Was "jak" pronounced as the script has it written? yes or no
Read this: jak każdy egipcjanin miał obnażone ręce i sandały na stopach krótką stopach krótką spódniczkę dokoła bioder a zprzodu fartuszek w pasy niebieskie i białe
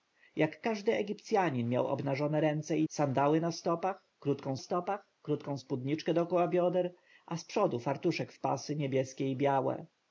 yes